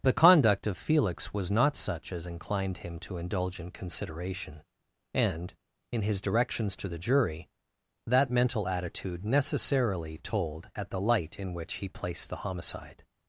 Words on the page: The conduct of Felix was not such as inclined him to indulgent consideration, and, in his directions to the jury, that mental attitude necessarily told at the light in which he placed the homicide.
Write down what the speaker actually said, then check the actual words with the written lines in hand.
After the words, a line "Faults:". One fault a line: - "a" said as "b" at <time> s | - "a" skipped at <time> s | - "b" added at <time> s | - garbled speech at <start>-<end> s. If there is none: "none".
The conduct of Felix was not such as inclined him to indulgent consideration, and, in his directions to the jury, that mental attitude necessarily told at the light in which he placed the homicide.
Faults:
none